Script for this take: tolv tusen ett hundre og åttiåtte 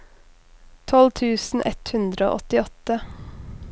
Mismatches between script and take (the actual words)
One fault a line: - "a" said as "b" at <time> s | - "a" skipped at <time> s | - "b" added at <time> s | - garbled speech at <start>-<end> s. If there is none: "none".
none